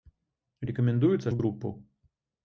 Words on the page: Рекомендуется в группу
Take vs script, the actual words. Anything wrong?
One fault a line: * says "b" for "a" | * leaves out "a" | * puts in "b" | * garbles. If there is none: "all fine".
all fine